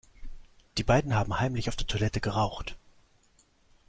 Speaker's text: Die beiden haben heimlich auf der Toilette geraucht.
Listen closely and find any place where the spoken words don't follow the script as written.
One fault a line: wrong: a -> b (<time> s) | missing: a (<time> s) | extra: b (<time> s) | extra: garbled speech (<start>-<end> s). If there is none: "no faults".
no faults